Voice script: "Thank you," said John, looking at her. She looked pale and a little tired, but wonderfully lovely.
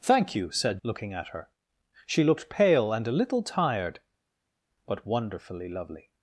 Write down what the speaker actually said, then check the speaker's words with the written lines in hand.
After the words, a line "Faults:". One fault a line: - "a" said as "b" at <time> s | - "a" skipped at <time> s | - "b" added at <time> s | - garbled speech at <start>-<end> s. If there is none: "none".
"Thank you," said Looking at her. She looked pale and a little tired, but wonderfully lovely.
Faults:
- "John" skipped at 0.8 s